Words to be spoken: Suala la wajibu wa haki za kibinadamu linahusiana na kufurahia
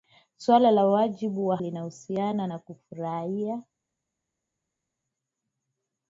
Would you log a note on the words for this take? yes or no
yes